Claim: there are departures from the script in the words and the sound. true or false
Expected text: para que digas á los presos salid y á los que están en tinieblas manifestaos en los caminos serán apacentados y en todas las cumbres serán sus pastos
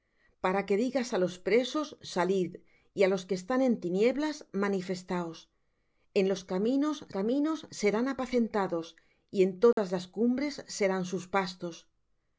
true